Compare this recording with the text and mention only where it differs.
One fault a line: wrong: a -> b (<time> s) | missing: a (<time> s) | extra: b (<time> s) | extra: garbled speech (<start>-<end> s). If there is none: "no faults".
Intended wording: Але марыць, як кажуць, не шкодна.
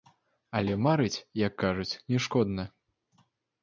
no faults